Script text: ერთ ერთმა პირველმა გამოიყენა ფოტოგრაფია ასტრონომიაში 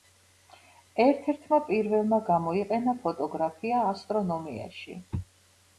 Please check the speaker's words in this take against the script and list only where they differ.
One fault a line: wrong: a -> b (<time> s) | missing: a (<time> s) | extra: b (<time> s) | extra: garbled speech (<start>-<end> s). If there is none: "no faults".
no faults